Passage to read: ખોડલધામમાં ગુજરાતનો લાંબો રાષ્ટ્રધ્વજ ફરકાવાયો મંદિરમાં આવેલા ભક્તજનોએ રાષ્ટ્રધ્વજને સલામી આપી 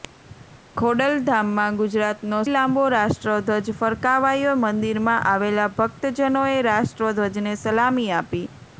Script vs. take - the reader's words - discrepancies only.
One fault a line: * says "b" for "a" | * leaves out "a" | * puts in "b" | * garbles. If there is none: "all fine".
all fine